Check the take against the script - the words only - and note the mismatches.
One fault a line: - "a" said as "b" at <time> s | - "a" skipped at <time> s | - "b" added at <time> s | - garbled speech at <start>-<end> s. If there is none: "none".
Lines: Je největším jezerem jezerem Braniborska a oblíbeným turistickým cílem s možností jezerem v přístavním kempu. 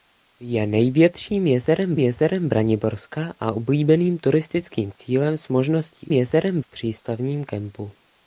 none